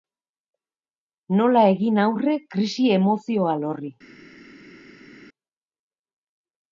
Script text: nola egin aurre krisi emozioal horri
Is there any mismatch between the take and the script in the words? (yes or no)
no